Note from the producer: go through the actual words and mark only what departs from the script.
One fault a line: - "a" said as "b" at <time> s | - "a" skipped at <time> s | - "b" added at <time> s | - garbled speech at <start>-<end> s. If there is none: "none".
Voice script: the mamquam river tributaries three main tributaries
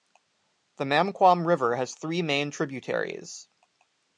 - "tributaries" said as "has" at 1.8 s